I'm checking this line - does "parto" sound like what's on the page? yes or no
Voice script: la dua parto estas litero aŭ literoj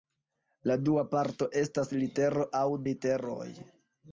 yes